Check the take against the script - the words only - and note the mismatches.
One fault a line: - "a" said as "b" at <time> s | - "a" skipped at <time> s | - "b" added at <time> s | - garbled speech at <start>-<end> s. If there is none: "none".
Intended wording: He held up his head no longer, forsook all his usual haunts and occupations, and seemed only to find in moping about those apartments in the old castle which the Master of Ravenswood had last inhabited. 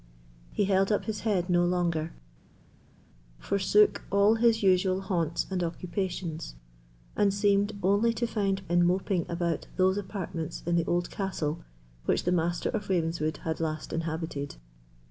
none